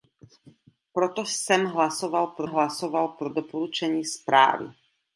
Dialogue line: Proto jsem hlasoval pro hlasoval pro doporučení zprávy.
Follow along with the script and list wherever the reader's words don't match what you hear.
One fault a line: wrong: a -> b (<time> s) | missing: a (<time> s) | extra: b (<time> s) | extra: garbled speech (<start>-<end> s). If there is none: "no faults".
no faults